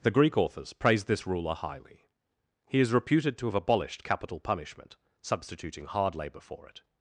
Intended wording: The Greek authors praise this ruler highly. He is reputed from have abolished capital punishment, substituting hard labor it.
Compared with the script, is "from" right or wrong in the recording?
wrong